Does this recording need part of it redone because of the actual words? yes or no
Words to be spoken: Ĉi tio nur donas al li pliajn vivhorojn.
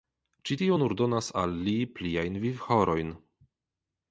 no